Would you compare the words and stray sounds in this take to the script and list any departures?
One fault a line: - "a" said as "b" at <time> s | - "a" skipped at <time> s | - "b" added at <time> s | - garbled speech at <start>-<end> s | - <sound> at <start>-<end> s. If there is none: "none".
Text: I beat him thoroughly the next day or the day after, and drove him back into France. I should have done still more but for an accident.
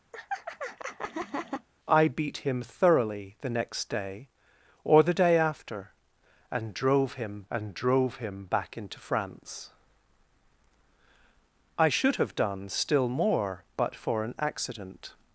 - laugh at 0.1-1.7 s
- "and drove him" added at 7.5 s